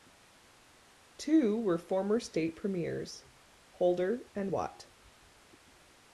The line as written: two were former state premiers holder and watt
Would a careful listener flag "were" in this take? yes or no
no